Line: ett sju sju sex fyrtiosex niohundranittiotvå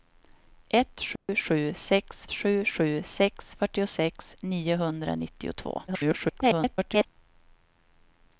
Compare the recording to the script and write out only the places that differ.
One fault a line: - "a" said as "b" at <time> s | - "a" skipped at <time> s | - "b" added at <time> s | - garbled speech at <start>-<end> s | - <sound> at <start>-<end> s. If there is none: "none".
- dropout at 1.2-1.3 s
- "sju sju sex" added at 2.3 s
- garbled speech at 5.9-7.1 s